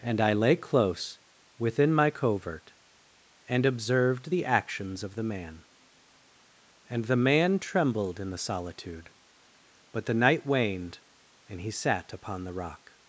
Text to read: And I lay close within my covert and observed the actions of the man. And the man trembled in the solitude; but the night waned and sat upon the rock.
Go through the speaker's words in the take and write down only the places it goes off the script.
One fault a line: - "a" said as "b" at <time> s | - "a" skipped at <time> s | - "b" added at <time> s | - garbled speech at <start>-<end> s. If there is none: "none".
- "he" added at 11.6 s